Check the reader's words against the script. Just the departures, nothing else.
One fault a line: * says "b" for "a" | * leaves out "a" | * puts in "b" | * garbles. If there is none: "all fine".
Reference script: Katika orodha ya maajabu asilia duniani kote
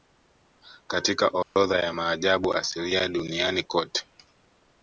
all fine